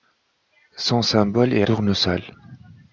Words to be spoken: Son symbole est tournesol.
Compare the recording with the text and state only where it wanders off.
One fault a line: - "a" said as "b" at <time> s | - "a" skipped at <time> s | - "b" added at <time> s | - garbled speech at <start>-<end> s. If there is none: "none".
none